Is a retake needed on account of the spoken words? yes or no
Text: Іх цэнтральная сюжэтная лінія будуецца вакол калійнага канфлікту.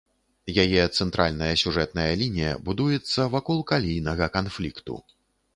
yes